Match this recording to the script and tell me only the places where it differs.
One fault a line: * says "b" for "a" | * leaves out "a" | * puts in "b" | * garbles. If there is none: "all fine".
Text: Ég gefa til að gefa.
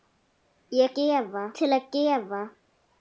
all fine